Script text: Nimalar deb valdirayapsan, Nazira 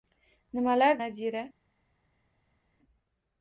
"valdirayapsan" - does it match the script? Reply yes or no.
no